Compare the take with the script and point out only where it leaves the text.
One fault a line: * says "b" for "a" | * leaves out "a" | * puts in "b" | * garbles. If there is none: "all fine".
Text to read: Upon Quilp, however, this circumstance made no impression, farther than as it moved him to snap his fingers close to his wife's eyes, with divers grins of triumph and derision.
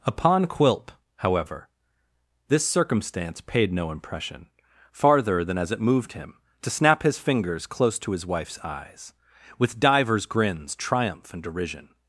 * says "paid" for "made"
* leaves out "of"